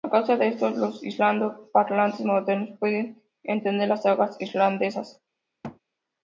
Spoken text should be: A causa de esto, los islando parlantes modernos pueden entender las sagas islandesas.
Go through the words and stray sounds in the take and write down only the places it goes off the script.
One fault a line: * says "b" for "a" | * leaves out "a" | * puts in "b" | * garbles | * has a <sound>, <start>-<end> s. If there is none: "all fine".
* has a thud, 5.6-5.8 s